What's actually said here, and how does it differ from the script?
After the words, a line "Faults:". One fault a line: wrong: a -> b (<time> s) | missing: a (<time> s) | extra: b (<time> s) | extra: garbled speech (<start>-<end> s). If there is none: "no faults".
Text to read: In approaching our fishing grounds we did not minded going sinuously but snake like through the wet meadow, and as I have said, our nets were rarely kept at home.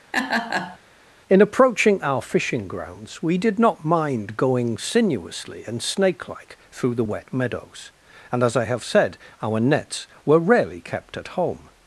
In approaching our fishing grounds we did not mind going sinuously and snake like through the wet meadows, and as I have said, our nets were rarely kept at home.
Faults:
wrong: minded -> mind (3.8 s)
wrong: but -> and (5.6 s)
wrong: meadow -> meadows (7.3 s)